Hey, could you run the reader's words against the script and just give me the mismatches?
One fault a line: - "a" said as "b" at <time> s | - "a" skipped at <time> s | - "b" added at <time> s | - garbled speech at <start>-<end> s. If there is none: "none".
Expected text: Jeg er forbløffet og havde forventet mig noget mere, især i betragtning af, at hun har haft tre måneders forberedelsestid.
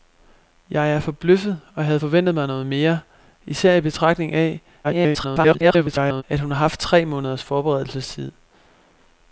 - garbled speech at 4.8-6.2 s